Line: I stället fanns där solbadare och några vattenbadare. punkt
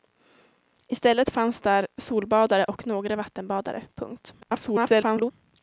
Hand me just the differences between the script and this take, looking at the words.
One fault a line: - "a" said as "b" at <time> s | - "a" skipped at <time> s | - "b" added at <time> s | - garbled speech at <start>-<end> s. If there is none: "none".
- garbled speech at 4.4-5.3 s